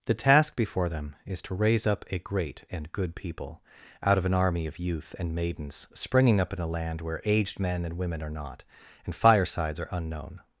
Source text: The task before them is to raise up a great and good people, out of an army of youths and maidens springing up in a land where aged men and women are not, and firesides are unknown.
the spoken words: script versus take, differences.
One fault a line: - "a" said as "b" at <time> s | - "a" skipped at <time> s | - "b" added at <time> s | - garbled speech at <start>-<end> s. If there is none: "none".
- "youths" said as "youth" at 4.8 s